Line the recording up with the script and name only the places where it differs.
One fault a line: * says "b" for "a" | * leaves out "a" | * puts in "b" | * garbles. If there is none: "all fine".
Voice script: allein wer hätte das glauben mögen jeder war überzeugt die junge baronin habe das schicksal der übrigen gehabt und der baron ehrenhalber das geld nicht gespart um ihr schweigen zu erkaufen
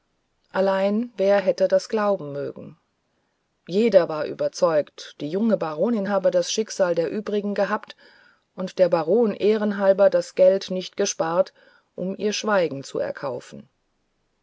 all fine